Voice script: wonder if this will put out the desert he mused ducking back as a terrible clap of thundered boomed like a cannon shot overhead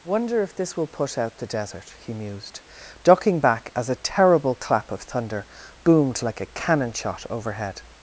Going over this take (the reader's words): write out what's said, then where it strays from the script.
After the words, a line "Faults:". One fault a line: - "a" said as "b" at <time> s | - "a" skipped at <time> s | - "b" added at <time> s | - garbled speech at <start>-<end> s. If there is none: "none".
wonder if this will put out the desert he mused ducking back as a terrible clap of thunder boomed like a cannon shot overhead
Faults:
- "thundered" said as "thunder" at 5.0 s